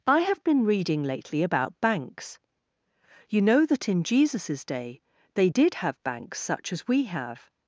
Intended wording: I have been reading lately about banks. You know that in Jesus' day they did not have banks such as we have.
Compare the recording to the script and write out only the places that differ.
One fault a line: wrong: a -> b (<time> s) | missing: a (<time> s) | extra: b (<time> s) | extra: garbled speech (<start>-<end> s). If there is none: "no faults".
missing: not (5.7 s)